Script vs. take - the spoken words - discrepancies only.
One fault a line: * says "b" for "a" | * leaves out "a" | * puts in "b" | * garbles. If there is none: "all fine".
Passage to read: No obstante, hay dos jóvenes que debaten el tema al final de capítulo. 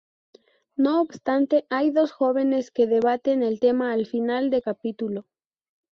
all fine